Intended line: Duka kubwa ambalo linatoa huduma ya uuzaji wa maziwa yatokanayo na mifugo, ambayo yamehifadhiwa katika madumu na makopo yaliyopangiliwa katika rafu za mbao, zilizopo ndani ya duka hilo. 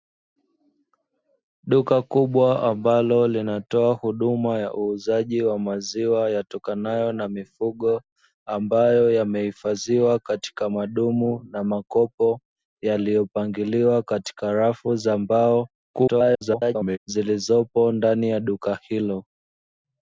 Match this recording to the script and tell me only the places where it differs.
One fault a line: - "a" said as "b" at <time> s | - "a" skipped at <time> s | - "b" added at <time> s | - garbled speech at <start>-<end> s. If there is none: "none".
- garbled speech at 15.9-17.0 s